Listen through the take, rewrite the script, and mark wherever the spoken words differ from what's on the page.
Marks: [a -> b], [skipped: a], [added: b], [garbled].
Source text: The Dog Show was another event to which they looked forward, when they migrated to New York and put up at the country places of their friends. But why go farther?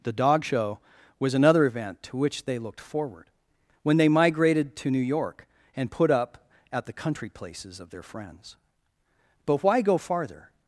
The Dog Show was another event to which they looked forward, when they migrated to New York and put up at the country places of their friends. But why go farther?